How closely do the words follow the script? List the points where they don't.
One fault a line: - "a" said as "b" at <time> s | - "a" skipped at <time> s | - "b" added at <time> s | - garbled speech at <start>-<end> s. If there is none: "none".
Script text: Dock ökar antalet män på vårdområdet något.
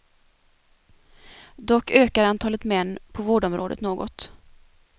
none